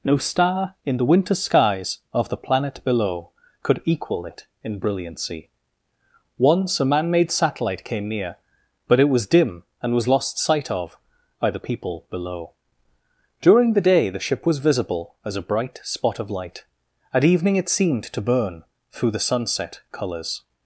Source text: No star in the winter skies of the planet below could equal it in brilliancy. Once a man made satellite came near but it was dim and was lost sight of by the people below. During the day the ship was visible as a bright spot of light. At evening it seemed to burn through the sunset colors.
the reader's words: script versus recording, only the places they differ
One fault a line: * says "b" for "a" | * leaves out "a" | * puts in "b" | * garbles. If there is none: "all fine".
all fine